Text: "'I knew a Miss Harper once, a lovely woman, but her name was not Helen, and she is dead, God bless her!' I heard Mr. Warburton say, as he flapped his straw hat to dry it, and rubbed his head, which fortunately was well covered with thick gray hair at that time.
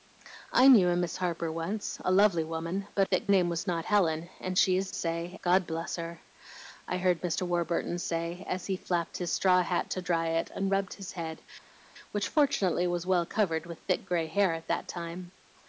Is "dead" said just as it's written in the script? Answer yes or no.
no